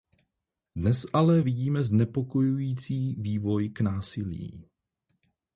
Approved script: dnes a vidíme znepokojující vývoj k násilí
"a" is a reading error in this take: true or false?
true